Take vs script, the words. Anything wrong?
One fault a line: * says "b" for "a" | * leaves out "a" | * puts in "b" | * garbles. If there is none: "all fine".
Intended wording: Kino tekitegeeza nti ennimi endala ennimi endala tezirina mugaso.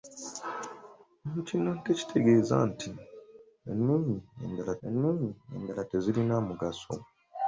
all fine